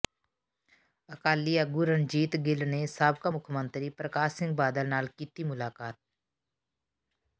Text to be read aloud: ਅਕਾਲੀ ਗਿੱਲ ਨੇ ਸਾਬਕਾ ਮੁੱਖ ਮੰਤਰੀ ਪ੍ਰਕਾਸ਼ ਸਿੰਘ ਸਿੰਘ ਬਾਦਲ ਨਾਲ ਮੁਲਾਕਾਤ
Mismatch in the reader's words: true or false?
true